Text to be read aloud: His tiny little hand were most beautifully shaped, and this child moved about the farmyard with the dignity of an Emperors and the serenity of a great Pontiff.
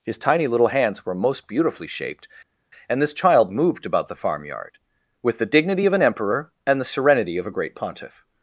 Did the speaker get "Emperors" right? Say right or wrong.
wrong